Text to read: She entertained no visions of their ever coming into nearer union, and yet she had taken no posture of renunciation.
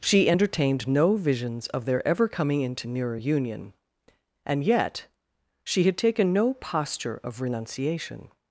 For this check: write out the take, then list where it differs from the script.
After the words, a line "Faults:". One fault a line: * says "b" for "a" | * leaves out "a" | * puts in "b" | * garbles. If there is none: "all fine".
She entertained no visions of their ever coming into nearer union, and yet she had taken no posture of renunciation.
Faults:
all fine